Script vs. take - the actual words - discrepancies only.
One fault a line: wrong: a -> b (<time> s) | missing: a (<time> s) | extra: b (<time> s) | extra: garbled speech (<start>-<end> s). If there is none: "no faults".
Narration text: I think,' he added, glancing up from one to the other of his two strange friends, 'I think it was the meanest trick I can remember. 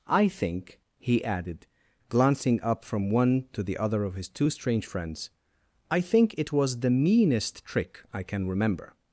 no faults